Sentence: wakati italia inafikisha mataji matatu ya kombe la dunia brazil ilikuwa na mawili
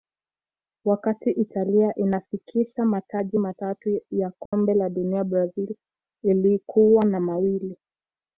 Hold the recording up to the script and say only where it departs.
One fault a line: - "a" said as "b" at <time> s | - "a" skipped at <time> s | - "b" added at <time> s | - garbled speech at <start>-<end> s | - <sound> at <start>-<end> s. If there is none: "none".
- dropout at 4.5-4.5 s